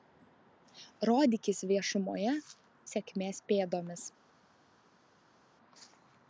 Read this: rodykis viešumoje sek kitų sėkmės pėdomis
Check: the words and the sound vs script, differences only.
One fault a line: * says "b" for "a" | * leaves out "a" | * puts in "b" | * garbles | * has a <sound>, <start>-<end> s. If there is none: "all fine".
* leaves out "sek kitų"